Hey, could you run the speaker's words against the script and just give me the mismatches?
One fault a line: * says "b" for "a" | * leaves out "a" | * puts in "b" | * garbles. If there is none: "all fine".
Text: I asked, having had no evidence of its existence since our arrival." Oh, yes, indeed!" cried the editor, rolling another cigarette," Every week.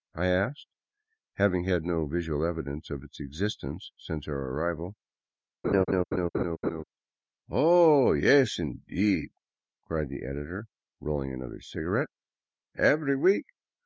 * puts in "visual"